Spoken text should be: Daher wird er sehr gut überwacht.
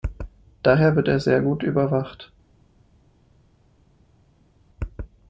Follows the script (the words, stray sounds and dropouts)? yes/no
yes